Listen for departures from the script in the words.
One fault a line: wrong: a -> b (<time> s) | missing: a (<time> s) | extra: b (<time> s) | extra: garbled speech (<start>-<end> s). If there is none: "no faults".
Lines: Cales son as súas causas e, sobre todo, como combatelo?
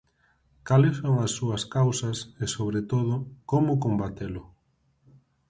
no faults